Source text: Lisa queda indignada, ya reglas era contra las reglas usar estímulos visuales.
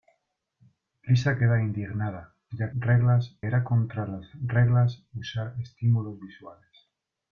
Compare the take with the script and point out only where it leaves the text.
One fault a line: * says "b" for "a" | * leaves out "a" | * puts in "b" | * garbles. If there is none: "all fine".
all fine